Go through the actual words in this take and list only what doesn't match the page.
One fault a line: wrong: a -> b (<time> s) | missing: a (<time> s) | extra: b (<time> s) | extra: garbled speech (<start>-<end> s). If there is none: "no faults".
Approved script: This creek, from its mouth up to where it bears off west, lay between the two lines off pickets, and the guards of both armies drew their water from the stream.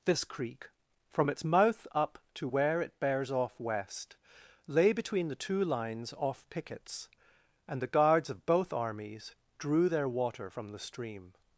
no faults